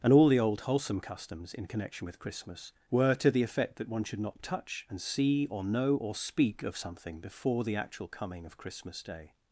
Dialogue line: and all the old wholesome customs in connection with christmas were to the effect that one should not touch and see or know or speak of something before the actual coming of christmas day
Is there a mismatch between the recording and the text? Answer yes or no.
no